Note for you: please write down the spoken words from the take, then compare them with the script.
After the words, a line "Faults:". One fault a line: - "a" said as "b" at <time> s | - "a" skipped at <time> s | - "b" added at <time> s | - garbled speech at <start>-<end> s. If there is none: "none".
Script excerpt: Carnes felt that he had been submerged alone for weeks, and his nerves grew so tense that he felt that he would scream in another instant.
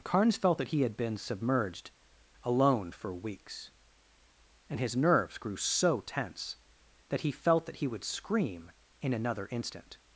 Carnes felt that he had been submerged alone for weeks, and his nerves grew so tense that he felt that he would scream in another instant.
Faults:
none